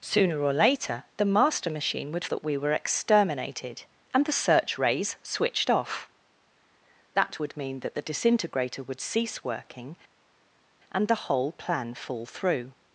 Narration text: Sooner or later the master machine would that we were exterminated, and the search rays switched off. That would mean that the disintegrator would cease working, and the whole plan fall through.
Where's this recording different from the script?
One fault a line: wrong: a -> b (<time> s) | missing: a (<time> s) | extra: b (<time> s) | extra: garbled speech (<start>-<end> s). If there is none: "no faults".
no faults